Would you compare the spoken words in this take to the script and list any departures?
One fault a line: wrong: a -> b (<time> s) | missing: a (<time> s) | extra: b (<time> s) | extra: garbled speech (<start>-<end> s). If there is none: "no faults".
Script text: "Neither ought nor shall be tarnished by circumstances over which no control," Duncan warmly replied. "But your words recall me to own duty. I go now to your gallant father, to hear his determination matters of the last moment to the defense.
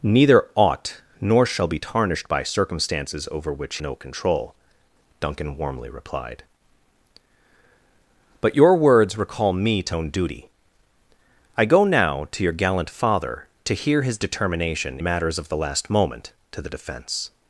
no faults